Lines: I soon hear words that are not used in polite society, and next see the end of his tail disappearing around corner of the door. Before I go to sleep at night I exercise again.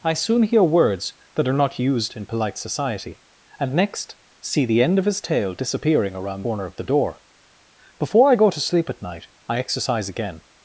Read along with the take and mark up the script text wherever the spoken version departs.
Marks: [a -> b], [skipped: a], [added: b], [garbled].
I soon hear words that are not used in polite society, and next see the end of his tail disappearing around corner of the door. Before I go to sleep at night I exercise again.